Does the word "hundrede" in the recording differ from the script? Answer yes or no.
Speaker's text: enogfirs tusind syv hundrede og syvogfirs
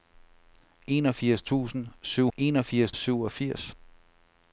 yes